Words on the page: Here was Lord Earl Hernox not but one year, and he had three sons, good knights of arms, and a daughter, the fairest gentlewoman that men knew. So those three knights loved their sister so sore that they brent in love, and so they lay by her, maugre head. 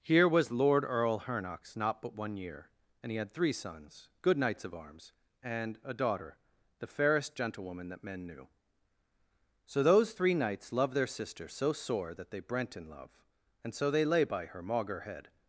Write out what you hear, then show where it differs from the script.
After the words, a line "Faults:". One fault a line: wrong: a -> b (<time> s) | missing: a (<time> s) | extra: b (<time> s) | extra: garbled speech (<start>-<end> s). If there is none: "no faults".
Here was Lord Earl Hernox not but one year, and he had three sons, good knights of arms, and a daughter, the fairest gentlewoman that men knew. So those three knights loved their sister so sore that they brent in love, and so they lay by her, maugre head.
Faults:
no faults